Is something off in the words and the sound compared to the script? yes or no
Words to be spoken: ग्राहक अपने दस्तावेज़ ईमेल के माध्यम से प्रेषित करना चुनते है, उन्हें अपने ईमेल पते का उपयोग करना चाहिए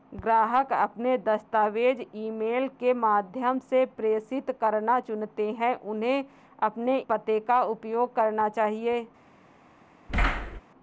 yes